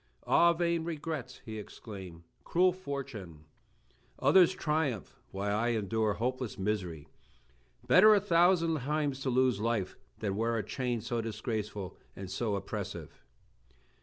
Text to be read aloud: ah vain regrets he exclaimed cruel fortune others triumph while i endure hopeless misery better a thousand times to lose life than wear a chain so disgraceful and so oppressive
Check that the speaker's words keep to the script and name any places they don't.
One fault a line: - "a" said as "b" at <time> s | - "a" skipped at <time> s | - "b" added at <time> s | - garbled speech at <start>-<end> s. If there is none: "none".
none